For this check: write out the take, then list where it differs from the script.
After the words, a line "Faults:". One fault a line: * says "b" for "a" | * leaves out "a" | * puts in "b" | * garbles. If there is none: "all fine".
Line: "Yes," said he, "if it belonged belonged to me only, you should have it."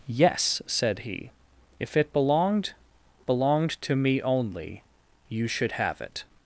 "Yes," said he, "if it belonged belonged to me only, you should have it."
Faults:
all fine